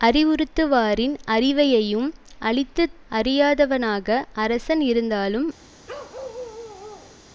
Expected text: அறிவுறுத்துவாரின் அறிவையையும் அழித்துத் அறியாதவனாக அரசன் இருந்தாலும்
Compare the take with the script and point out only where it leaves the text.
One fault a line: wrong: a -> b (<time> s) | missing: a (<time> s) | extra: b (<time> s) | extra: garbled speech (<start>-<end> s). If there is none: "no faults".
no faults